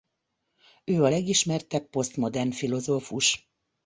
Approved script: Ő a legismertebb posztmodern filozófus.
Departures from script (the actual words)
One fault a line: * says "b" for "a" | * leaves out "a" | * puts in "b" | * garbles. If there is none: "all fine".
all fine